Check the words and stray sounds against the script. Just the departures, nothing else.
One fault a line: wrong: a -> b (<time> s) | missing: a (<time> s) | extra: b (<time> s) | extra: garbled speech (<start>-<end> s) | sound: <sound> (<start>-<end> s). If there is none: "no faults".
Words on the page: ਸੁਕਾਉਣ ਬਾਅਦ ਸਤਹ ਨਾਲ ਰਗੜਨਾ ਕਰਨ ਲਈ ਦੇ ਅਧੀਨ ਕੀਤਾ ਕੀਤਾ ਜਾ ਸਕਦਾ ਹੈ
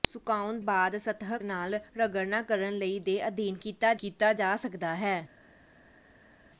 no faults